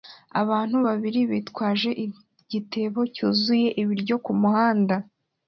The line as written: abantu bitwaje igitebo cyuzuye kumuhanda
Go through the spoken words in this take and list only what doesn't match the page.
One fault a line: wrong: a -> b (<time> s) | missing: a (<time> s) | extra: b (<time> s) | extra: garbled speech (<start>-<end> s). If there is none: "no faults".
extra: babiri (0.9 s)
extra: ibiryo (3.8 s)